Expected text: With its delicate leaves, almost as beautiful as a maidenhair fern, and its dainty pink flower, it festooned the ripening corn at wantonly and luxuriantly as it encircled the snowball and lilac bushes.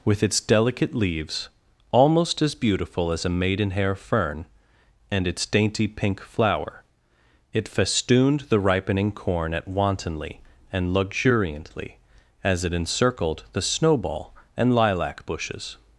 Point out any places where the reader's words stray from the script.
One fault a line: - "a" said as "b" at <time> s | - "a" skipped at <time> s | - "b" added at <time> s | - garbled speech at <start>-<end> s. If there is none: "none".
none